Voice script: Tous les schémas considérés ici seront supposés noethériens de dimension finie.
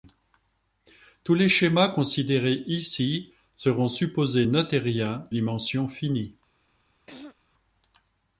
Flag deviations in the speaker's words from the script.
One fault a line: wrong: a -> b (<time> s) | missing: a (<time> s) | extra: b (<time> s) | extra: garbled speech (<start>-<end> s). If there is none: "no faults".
missing: de (5.3 s)